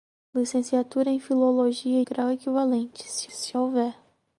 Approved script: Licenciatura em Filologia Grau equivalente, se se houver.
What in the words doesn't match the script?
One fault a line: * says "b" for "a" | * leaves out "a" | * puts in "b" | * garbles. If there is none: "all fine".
all fine